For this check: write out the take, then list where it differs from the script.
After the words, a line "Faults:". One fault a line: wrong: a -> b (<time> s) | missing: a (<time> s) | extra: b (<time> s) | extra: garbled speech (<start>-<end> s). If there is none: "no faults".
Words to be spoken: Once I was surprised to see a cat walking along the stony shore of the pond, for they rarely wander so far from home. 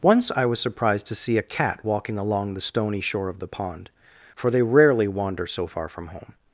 Once I was surprised to see a cat walking along the stony shore of the pond, for they rarely wander so far from home.
Faults:
no faults